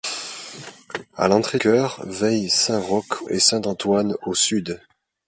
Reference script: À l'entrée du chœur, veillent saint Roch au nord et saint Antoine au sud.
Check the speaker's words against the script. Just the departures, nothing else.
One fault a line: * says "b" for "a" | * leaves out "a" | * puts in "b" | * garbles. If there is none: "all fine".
* leaves out "du"
* leaves out "au nord"